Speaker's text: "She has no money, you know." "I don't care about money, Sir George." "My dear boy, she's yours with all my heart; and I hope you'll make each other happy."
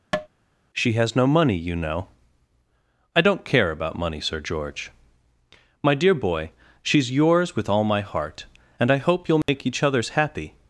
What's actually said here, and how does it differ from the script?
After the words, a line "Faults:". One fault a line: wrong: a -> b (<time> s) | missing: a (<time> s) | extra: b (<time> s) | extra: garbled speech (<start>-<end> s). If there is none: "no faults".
"She has no money, you know." "I don't care about money, Sir George." "My dear boy, she's yours with all my heart; and I hope you'll make each others happy."
Faults:
wrong: other -> others (9.8 s)